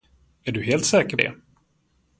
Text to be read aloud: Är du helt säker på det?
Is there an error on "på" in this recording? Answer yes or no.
yes